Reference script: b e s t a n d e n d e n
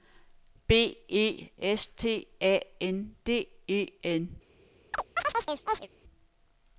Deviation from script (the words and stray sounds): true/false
true